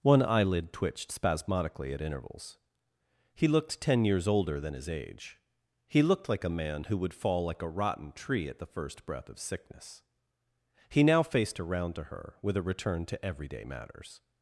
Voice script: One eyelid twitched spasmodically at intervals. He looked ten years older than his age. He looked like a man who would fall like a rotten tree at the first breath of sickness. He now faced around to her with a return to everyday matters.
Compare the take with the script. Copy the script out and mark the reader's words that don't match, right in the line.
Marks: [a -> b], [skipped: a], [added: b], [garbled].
One eyelid twitched spasmodically at intervals. He looked ten years older than his age. He looked like a man who would fall like a rotten tree at the first breath of sickness. He now faced around to her with a return to everyday matters.